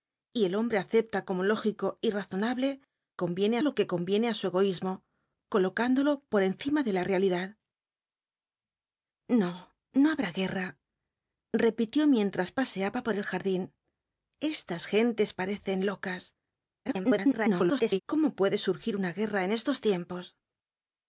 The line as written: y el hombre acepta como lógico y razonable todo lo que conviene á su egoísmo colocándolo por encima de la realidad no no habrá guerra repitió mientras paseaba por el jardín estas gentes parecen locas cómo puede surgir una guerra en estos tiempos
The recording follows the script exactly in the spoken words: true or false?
false